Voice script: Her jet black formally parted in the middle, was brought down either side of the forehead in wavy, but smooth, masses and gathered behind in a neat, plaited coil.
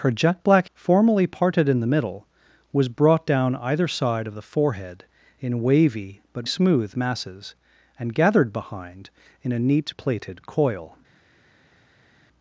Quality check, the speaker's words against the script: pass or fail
pass